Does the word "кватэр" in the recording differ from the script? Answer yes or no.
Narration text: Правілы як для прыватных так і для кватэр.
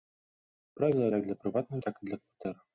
no